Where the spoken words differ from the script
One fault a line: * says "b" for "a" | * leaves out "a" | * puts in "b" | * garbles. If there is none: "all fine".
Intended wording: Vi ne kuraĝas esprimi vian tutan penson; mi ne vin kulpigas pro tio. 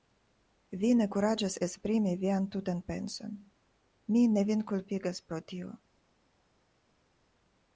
all fine